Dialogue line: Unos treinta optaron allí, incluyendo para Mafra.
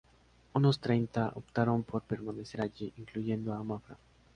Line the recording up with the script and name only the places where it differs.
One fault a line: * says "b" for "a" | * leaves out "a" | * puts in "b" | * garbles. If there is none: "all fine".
* puts in "por permanecer"
* says "a" for "para"